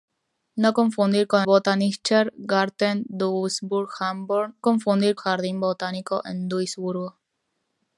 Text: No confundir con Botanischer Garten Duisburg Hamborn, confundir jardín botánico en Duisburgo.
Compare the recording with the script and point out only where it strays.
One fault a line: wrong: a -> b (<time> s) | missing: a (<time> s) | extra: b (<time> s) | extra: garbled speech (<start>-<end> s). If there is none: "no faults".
no faults